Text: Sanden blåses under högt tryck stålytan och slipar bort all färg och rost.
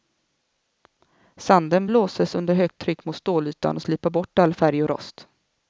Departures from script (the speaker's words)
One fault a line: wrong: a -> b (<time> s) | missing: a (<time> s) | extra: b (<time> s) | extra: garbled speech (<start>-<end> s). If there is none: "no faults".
extra: mot (3.0 s)